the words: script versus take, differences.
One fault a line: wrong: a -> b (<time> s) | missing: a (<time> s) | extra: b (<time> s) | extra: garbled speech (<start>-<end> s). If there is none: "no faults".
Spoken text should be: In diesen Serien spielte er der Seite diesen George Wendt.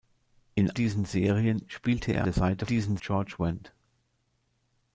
no faults